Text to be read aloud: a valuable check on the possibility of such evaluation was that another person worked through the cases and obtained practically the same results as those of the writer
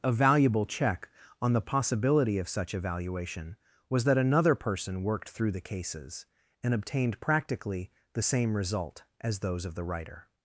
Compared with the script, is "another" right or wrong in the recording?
right